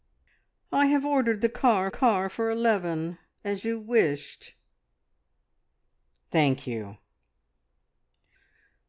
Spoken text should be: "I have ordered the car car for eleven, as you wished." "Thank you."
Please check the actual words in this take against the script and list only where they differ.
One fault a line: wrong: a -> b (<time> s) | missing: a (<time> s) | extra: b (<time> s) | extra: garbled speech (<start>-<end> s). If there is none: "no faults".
no faults